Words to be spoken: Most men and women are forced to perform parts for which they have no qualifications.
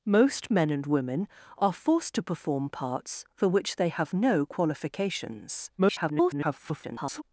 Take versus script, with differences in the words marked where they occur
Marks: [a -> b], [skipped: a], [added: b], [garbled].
Most men and women are forced to perform parts for which they have no qualifications. [garbled]